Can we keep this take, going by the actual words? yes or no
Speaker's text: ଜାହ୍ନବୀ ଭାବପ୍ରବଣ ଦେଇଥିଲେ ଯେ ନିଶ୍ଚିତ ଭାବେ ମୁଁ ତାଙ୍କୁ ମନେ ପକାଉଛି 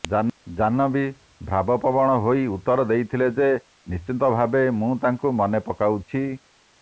no